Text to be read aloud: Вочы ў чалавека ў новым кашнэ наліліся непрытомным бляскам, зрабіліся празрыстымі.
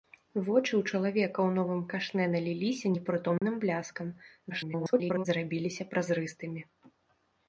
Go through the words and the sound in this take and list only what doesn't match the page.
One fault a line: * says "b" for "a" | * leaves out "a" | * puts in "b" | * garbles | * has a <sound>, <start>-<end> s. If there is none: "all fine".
* has a dropout, 3.4-3.4 s
* garbles